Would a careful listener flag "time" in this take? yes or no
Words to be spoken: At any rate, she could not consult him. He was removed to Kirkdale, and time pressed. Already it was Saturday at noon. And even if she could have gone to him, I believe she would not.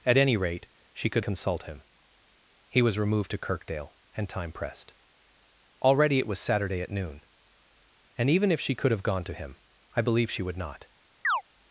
no